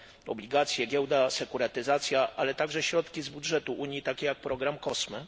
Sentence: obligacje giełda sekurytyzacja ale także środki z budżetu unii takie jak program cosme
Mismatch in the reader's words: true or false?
false